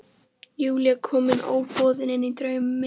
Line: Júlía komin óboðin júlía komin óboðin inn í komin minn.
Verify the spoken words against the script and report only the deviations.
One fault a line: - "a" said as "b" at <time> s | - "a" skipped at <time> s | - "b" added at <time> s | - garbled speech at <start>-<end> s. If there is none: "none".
- "júlía komin óboðin" skipped at 2.1 s
- "komin" said as "draum" at 2.4 s